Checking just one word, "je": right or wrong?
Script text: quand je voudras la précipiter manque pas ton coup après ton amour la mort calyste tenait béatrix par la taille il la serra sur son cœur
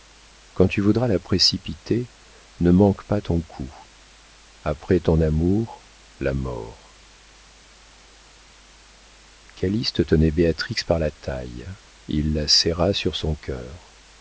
wrong